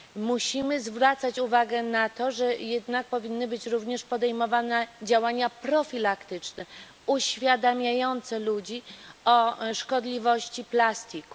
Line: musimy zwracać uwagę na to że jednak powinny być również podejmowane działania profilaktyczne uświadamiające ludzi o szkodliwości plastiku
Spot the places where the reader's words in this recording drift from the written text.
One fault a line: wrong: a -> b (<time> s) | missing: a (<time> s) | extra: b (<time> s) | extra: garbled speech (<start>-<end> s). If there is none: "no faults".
no faults